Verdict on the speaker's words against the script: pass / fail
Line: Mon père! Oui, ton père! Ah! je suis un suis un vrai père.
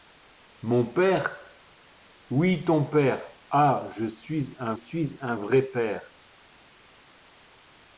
pass